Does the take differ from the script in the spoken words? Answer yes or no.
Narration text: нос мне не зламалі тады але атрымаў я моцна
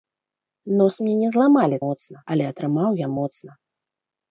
yes